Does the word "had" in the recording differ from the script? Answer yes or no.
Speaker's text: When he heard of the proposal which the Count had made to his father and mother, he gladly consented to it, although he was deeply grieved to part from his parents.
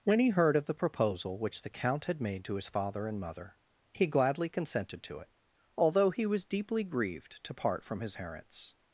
no